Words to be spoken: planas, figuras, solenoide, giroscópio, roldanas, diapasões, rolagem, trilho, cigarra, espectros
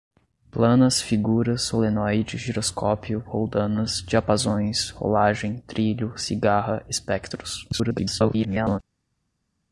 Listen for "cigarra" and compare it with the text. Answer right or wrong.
right